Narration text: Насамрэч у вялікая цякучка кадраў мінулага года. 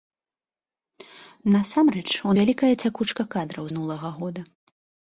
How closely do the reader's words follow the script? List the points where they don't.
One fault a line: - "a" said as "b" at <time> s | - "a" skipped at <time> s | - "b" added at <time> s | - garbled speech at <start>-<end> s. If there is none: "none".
none